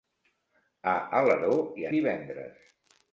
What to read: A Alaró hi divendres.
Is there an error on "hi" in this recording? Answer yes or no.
no